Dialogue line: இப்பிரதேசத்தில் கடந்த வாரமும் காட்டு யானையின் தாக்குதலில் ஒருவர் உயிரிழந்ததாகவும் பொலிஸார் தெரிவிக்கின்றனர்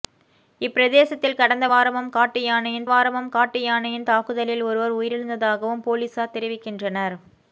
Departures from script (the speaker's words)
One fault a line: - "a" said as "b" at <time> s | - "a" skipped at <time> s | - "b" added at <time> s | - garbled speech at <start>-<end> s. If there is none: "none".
- "வாரமும் காட்டு யானையின்" added at 2.8 s